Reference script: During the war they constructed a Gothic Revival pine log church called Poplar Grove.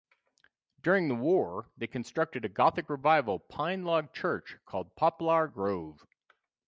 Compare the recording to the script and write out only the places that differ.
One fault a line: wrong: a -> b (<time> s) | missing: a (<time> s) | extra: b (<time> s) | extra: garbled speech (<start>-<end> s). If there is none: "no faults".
no faults